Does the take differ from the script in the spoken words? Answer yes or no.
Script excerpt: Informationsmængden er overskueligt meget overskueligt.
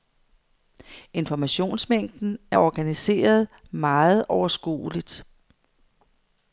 yes